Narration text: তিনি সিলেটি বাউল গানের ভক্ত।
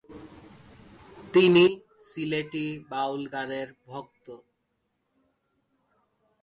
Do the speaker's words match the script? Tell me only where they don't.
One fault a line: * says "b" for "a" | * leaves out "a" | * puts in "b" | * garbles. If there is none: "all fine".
all fine